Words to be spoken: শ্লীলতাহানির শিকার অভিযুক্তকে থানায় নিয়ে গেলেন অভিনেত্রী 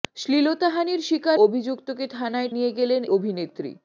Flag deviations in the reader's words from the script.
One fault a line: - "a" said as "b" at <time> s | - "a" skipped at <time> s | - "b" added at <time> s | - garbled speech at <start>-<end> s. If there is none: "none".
none